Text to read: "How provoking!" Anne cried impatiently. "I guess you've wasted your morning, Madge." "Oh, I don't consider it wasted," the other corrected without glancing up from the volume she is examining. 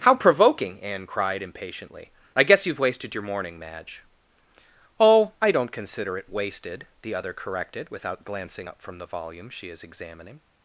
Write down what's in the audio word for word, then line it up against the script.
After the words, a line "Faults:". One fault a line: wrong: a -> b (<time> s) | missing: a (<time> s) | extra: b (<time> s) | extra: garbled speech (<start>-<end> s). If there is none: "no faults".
"How provoking!" Anne cried impatiently. "I guess you've wasted your morning, Madge." "Oh, I don't consider it wasted," the other corrected without glancing up from the volume she is examining.
Faults:
no faults